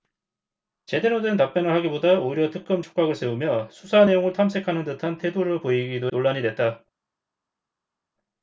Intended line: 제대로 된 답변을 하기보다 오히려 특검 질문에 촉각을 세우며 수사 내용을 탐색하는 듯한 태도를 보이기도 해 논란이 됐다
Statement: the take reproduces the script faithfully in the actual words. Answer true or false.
false